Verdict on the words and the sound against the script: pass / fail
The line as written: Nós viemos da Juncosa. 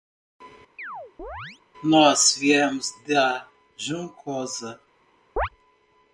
fail